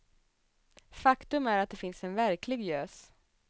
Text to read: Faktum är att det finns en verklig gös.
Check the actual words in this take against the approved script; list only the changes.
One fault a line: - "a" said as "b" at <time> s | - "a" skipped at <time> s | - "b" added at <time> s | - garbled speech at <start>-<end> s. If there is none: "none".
none